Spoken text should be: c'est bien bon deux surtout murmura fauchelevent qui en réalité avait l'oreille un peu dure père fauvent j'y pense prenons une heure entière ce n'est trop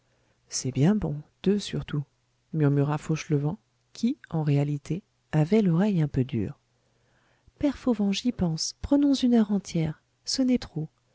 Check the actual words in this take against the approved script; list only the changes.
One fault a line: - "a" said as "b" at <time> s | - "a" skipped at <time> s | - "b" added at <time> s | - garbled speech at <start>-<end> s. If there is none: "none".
none